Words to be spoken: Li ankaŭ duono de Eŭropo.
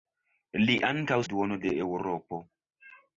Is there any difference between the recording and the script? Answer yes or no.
no